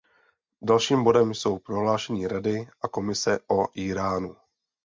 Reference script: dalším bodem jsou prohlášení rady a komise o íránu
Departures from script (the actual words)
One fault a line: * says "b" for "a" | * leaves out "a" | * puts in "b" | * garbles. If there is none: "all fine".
all fine